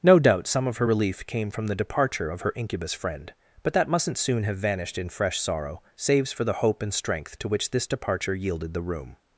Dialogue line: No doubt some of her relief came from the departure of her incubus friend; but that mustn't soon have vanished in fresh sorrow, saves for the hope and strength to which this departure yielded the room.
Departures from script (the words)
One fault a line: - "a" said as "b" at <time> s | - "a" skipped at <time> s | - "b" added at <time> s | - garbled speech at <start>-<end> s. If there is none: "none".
none